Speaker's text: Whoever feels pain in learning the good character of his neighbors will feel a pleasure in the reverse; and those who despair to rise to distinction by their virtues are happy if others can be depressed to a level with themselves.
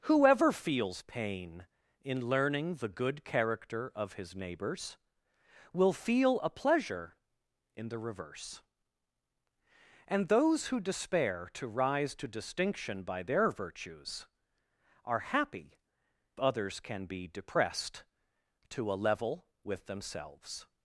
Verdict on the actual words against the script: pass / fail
fail